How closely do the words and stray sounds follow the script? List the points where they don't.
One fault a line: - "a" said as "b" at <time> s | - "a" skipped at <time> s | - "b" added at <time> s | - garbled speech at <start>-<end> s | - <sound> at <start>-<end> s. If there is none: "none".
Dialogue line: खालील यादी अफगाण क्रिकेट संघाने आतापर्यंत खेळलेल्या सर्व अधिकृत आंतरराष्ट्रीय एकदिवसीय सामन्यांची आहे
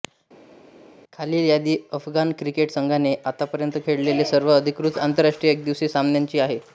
none